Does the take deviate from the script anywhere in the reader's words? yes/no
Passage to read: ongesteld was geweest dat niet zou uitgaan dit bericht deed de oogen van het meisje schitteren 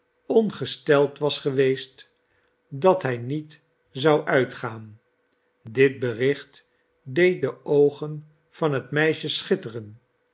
yes